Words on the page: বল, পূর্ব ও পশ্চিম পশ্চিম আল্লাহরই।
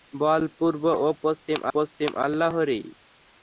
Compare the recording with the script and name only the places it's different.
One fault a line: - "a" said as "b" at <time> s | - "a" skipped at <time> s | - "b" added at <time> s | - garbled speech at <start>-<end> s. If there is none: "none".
none